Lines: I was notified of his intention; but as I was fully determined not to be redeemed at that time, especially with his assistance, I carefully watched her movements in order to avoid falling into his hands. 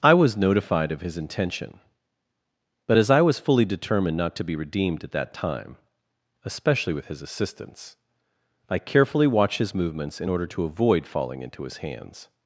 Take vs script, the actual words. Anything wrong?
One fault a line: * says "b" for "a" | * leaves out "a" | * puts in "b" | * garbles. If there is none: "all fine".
* says "his" for "her"